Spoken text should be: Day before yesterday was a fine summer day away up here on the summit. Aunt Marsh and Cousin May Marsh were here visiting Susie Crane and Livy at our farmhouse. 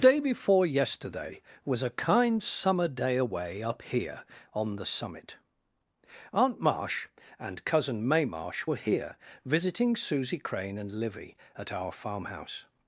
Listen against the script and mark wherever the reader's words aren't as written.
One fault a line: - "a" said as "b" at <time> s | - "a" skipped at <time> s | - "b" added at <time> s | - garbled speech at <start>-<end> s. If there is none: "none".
- "fine" said as "kind" at 1.9 s